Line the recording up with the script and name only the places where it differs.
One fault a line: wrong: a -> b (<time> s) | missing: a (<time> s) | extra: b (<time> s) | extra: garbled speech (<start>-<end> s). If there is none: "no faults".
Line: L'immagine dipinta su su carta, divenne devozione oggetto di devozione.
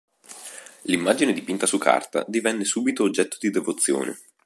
missing: su (1.8 s)
wrong: devozione -> subito (2.6 s)